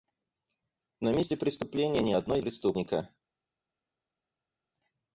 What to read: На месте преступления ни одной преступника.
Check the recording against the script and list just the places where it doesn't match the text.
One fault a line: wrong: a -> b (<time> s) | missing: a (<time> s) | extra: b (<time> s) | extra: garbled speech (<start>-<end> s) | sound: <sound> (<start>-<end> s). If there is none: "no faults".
no faults